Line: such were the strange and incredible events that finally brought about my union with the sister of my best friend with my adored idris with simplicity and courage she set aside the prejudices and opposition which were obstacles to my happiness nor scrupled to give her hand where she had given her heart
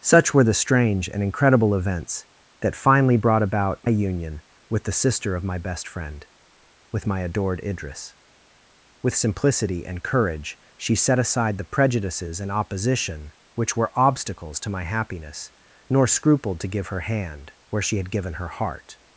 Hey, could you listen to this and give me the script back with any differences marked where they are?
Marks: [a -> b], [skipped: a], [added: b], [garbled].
such were the strange and incredible events that finally brought about [skipped: my] union with the sister of my best friend with my adored idris with simplicity and courage she set aside the prejudices and opposition which were obstacles to my happiness nor scrupled to give her hand where she had given her heart